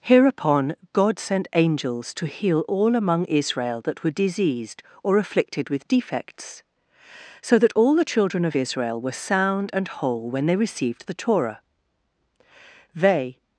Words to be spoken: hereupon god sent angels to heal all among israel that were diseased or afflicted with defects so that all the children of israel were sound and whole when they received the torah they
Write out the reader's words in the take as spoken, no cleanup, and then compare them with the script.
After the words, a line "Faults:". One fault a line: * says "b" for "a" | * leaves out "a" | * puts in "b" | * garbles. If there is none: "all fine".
hereupon god sent angels to heal all among israel that were diseased or afflicted with defects so that all the children of israel were sound and whole when they received the torah they
Faults:
all fine